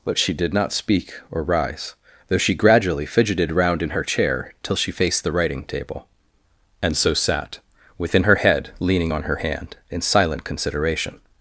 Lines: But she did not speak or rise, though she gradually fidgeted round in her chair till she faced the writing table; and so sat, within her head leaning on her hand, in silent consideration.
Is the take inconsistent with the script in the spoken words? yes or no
no